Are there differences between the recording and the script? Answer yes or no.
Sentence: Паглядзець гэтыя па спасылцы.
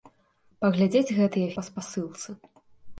no